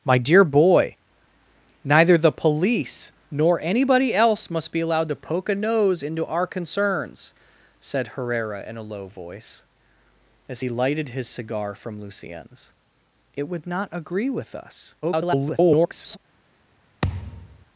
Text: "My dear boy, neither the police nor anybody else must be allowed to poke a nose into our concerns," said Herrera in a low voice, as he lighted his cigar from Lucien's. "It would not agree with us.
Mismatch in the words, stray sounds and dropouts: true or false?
true